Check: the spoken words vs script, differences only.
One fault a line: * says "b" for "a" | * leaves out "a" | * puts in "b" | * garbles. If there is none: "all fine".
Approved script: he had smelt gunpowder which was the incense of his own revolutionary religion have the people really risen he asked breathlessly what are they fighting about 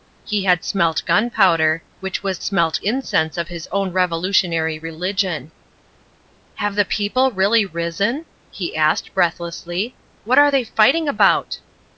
* says "smelt" for "the"